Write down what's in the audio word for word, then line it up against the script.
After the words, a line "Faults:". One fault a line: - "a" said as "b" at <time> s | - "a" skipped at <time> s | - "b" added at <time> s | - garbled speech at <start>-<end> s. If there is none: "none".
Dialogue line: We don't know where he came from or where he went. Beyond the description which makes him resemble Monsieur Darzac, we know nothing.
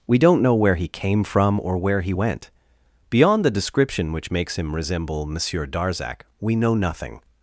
We don't know where he came from or where he went. Beyond the description which makes him resemble Monsieur Darzac, we know nothing.
Faults:
none